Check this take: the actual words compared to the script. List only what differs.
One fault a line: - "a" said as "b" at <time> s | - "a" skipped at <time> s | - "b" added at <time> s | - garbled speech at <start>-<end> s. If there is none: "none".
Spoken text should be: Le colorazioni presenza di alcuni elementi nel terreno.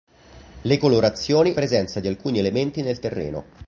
none